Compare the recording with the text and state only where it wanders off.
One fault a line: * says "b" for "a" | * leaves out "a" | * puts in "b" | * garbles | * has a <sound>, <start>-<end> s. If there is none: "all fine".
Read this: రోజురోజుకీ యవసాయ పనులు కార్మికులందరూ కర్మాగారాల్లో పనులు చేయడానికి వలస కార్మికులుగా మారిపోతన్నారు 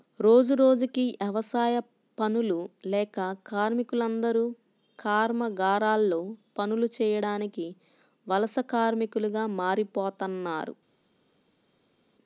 * puts in "లేక"